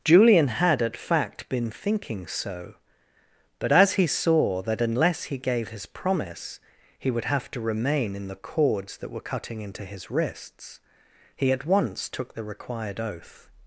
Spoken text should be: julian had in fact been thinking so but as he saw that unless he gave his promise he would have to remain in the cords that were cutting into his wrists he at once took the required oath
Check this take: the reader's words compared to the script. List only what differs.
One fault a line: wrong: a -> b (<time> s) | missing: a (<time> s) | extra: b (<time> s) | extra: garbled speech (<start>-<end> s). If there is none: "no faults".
wrong: in -> at (0.8 s)